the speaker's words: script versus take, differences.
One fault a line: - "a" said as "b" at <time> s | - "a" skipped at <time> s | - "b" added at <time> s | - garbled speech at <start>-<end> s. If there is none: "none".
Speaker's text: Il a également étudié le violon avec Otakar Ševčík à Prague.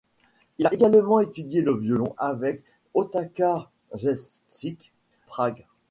- "à" skipped at 4.9 s